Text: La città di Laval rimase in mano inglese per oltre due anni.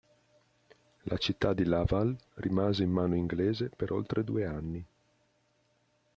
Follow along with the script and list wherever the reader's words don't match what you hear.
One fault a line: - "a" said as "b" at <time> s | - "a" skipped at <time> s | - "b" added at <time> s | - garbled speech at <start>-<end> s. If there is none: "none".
none